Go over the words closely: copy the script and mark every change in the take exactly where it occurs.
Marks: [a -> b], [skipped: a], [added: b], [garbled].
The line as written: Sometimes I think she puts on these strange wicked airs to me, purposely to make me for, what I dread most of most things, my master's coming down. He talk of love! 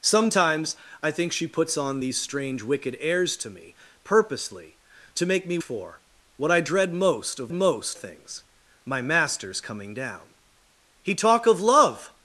Sometimes I think she puts on these strange wicked airs to me, purposely to make me for, what I dread most of most things, my master's coming down. He talk of love!